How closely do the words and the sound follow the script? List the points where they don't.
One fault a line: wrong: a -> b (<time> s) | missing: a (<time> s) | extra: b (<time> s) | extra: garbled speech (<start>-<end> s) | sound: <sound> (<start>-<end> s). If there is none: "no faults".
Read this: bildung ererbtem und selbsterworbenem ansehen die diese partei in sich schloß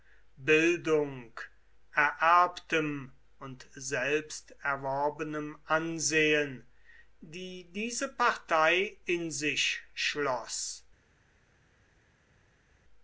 no faults